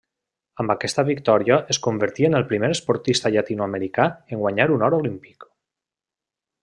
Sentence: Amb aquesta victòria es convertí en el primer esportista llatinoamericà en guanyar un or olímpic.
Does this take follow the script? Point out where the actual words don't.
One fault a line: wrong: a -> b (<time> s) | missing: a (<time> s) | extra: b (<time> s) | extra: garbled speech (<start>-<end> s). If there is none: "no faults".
no faults